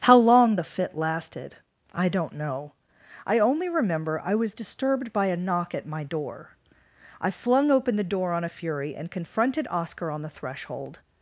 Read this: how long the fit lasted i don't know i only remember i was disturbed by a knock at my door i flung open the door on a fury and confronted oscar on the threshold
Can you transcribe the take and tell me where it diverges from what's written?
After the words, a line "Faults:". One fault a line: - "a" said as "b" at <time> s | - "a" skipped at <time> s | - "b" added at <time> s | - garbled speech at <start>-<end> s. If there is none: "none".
how long the fit lasted i don't know i only remember i was disturbed by a knock at my door i flung open the door on a fury and confronted oscar on the threshold
Faults:
none